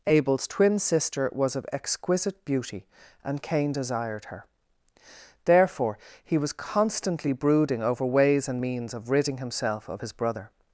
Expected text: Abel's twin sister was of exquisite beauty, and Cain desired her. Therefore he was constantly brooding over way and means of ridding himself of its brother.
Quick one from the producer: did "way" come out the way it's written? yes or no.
no